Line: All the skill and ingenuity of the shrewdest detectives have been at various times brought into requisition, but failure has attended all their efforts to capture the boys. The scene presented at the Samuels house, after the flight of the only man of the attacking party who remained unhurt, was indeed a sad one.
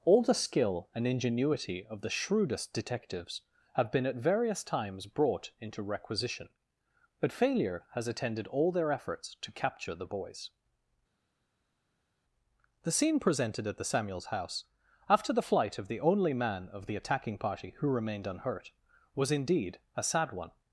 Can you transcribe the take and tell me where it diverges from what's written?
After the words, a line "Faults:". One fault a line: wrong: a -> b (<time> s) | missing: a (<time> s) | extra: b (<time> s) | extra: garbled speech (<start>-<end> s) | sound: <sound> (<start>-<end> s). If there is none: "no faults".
All the skill and ingenuity of the shrewdest detectives have been at various times brought into requisition, but failure has attended all their efforts to capture the boys. The scene presented at the Samuels house, after the flight of the only man of the attacking party who remained unhurt, was indeed a sad one.
Faults:
no faults